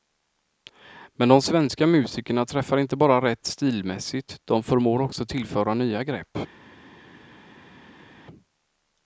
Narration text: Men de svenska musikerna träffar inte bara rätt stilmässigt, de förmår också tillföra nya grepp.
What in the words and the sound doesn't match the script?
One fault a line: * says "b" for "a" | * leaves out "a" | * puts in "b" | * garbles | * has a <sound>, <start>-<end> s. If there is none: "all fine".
all fine